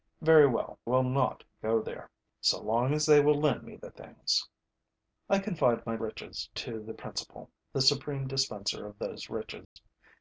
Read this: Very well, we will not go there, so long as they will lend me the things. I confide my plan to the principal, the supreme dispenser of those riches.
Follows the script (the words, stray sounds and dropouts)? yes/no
no